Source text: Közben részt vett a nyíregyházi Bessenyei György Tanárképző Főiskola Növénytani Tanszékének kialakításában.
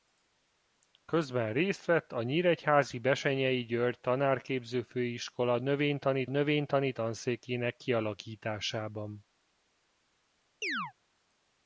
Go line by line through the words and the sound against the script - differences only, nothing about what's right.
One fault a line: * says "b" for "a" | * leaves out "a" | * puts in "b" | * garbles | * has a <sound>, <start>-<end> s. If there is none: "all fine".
* puts in "Növénytani"
* has a chirp, 10.6-10.9 s